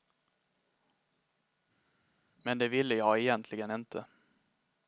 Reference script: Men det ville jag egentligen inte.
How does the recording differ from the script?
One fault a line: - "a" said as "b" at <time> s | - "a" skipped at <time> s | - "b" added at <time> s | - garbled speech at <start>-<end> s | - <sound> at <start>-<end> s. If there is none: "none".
none